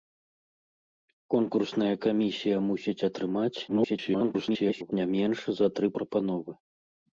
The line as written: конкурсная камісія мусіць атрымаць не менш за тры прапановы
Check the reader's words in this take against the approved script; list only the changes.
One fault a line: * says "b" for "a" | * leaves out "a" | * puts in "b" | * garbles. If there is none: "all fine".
* garbles